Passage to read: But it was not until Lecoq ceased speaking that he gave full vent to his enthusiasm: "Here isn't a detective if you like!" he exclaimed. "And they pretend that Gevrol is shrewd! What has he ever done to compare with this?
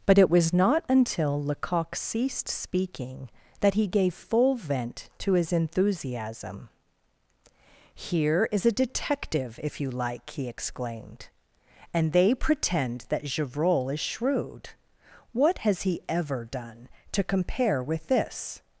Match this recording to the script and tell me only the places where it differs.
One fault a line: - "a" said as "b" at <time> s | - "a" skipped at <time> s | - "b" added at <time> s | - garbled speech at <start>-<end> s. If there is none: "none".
- "isn't" said as "is" at 8.5 s